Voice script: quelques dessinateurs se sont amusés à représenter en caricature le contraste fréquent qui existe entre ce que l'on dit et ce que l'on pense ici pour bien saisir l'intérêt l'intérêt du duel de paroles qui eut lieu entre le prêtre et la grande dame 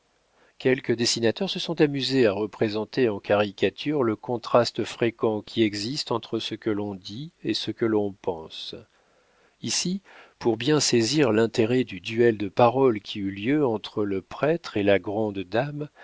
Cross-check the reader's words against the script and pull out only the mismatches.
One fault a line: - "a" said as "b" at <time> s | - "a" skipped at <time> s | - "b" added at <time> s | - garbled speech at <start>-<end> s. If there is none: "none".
- "l'intérêt" skipped at 11.8 s